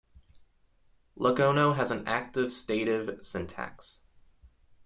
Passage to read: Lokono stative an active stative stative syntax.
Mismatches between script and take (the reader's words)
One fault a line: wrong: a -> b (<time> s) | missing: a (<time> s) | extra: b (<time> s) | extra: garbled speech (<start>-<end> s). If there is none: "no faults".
wrong: stative -> has (1.8 s)
missing: stative (3.2 s)